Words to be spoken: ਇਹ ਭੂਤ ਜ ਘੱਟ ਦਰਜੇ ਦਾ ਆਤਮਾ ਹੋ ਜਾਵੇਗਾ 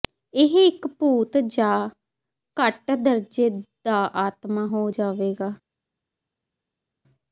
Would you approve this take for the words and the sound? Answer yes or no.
no